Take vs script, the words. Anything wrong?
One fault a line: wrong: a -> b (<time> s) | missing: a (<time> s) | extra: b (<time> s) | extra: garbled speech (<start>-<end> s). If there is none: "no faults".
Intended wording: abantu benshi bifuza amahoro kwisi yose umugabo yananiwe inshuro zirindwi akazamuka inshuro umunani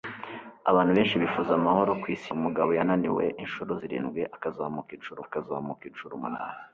missing: yose (2.3 s)
extra: akazamuka inshuro (5.3 s)